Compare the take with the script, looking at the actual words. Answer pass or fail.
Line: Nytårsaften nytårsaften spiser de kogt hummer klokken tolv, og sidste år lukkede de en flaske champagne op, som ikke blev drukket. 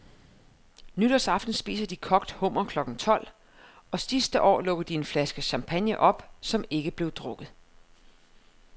fail